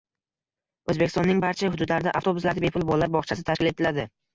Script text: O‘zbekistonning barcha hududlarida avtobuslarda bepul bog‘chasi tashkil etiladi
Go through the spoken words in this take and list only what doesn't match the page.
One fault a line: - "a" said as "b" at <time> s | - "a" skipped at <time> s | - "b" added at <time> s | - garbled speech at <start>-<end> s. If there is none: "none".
- "bolalar" added at 2.9 s